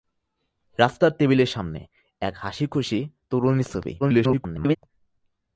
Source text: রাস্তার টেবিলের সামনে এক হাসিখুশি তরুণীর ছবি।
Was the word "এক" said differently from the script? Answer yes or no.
no